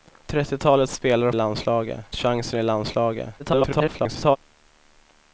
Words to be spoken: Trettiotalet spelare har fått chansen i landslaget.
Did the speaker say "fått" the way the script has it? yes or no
no